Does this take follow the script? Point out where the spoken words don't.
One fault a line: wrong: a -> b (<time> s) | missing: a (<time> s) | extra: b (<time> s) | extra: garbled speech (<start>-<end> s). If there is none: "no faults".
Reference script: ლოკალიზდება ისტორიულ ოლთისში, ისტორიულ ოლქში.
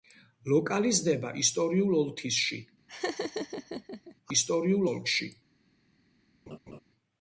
no faults